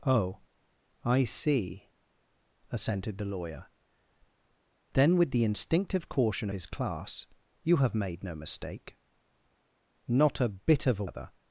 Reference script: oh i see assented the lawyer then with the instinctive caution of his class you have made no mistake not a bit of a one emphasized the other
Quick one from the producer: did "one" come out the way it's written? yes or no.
no